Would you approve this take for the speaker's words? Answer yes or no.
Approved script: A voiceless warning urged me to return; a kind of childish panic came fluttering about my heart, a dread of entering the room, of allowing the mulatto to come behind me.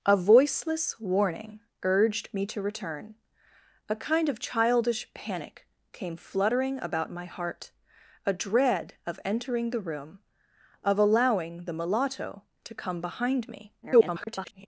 no